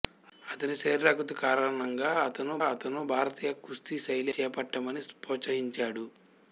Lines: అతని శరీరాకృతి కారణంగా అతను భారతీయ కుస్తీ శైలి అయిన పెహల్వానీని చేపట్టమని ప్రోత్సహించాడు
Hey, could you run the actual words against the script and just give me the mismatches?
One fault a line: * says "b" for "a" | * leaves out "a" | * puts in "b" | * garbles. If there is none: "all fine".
* puts in "అతను"
* leaves out "అయిన పెహల్వానీని"